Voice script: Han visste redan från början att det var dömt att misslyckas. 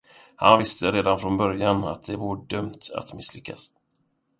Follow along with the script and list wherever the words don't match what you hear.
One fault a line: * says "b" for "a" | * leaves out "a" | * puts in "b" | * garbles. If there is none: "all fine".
all fine